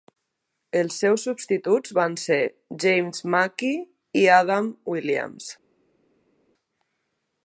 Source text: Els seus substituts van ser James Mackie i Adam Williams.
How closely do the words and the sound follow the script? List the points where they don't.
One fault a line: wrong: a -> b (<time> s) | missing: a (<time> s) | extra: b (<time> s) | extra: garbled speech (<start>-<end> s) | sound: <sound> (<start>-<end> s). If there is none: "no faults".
no faults